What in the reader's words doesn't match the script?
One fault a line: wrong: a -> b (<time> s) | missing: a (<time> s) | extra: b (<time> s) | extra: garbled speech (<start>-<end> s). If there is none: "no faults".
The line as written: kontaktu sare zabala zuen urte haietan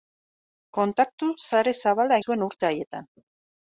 no faults